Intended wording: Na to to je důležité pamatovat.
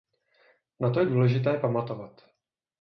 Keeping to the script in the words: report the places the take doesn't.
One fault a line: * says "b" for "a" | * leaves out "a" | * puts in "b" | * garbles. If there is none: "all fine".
* leaves out "to"